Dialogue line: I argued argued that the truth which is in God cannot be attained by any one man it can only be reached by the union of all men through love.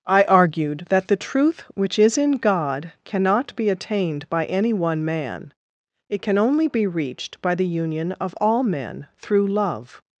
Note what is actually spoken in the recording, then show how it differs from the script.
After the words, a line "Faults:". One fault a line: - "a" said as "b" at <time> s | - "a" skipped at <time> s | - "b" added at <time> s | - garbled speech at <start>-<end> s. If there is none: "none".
I argued that the truth which is in God cannot be attained by any one man it can only be reached by the union of all men through love.
Faults:
- "argued" skipped at 0.9 s